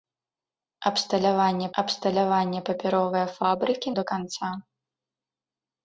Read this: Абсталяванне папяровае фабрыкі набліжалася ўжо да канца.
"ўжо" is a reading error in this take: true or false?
true